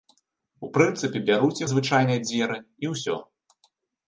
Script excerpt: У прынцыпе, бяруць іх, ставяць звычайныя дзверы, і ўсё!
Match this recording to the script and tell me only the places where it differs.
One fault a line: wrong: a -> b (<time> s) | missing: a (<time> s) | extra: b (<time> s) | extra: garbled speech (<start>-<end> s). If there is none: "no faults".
missing: іх ставяць (1.6 s)